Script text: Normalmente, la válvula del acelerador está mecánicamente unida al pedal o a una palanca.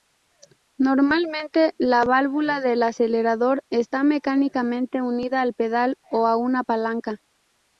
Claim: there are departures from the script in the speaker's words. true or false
false